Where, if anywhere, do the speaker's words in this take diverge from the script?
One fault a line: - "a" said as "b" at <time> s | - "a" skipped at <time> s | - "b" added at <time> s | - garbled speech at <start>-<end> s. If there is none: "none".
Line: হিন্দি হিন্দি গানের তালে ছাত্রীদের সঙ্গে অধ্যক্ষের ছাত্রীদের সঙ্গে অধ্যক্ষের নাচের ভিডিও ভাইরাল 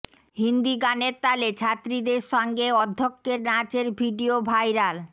- "হিন্দি" skipped at 0.7 s
- "ছাত্রীদের সঙ্গে অধ্যক্ষের" skipped at 3.4 s